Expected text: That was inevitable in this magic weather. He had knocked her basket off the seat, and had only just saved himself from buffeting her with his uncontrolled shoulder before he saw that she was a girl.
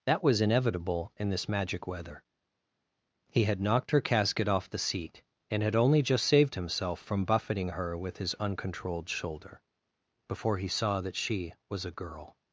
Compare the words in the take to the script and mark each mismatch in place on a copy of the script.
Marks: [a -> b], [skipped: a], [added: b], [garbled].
That was inevitable in this magic weather. He had knocked her [basket -> casket] off the seat, and had only just saved himself from buffeting her with his uncontrolled shoulder before he saw that she was a girl.